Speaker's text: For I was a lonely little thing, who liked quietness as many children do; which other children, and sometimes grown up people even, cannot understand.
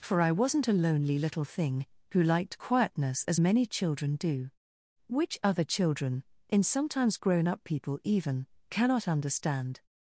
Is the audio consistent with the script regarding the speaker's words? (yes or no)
no